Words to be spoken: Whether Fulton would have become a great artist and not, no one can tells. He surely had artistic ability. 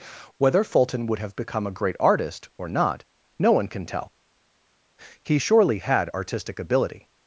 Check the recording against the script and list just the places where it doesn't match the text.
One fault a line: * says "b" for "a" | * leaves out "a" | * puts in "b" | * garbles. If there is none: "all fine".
* says "or" for "and"
* says "tell" for "tells"